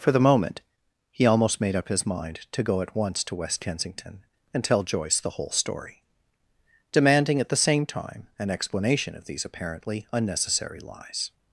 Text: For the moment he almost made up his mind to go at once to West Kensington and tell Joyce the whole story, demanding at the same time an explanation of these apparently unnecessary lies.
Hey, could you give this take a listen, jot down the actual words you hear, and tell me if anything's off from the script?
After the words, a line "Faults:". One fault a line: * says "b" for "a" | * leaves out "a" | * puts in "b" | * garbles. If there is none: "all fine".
For the moment he almost made up his mind to go at once to West Kensington and tell Joyce the whole story, demanding at the same time an explanation of these apparently unnecessary lies.
Faults:
all fine